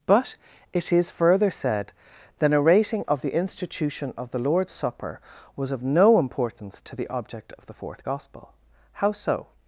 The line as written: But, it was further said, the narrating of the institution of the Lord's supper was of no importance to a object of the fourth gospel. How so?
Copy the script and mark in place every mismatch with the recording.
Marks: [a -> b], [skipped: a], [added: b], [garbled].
But, it [was -> is] further said, the narrating of the institution of the Lord's supper was of no importance to [a -> the] object of the fourth gospel. How so?